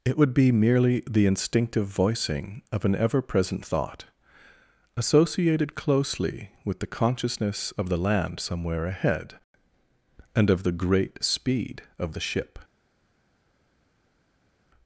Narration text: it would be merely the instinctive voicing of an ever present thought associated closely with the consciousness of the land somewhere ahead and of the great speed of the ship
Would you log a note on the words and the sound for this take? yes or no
no